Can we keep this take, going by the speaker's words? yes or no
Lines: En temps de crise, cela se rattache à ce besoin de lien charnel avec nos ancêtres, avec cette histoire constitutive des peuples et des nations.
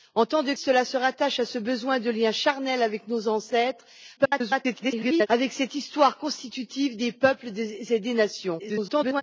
no